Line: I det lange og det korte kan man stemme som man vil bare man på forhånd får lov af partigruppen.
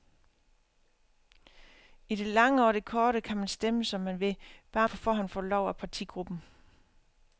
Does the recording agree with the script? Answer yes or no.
no